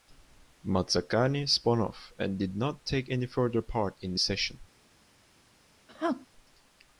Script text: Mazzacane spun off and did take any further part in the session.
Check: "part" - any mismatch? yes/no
no